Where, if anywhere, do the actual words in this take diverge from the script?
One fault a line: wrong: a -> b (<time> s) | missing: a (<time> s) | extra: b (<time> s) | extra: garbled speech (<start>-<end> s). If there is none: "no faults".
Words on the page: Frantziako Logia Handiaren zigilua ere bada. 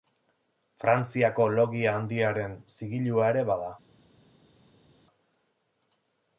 no faults